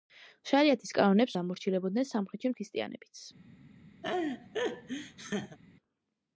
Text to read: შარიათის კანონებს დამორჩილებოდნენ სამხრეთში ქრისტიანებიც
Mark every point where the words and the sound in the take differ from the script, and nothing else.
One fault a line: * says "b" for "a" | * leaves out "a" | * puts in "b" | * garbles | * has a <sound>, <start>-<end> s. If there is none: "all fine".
* has a laugh, 4.0-5.6 s